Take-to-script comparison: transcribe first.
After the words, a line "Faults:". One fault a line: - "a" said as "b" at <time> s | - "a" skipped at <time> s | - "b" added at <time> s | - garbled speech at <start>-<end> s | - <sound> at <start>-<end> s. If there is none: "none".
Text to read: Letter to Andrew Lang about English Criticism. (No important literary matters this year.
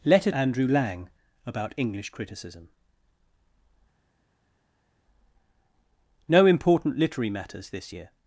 Letter Andrew Lang about English Criticism. (No important literary matters this year.
Faults:
- "to" skipped at 0.3 s